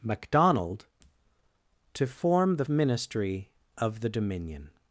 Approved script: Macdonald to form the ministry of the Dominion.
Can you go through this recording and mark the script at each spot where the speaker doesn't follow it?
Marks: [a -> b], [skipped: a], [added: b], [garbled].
Macdonald to form the ministry of the Dominion.